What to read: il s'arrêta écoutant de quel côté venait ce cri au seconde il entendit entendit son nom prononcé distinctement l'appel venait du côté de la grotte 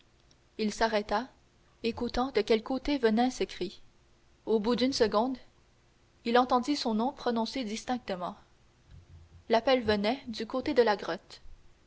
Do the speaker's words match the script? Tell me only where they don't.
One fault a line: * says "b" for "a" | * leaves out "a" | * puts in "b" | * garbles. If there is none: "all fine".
* puts in "bout d'une"
* leaves out "entendit"